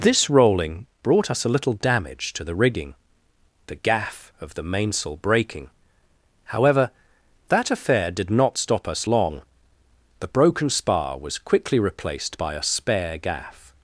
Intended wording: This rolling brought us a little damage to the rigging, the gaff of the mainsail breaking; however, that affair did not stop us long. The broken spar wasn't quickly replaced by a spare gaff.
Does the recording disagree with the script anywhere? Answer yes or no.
yes